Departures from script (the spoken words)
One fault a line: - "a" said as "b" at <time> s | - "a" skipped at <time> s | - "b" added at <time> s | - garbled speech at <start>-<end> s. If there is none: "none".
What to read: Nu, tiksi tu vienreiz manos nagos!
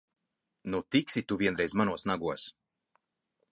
none